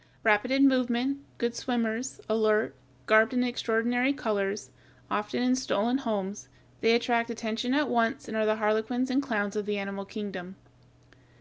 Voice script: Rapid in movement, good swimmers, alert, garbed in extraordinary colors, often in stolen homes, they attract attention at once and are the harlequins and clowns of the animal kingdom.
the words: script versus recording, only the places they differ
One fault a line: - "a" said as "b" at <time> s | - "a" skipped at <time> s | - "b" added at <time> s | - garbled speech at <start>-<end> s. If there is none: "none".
none